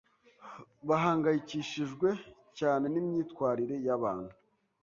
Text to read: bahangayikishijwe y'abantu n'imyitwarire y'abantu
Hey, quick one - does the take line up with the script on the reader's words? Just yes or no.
no